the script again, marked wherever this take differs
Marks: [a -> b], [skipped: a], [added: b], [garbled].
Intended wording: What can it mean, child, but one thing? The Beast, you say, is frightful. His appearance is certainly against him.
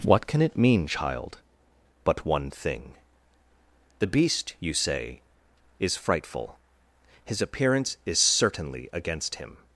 What can it mean, child, but one thing? The Beast, you say, is frightful. His appearance is certainly against him.